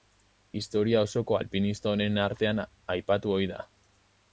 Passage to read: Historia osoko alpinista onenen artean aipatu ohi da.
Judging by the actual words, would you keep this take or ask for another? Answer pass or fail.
pass